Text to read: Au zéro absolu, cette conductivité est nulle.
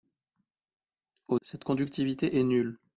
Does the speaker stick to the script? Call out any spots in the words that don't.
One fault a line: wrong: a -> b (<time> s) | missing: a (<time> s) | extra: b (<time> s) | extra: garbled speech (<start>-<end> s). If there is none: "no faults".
missing: zéro absolu (1.4 s)